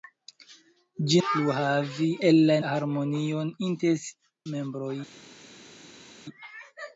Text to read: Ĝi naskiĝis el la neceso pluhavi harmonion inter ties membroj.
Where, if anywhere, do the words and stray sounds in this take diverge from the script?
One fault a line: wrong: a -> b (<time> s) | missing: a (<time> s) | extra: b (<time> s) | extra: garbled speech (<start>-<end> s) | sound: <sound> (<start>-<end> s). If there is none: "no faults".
wrong: naskiĝis -> pluhavi (1.3 s)
missing: neceso pluhavi (2.6 s)
missing: ties (4.1 s)